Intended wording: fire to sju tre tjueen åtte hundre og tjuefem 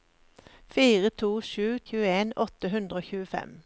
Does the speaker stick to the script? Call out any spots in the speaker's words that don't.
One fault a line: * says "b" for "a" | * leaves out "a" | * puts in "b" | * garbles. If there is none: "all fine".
* leaves out "tre"